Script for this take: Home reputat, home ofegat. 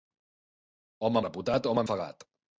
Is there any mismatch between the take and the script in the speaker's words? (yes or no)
no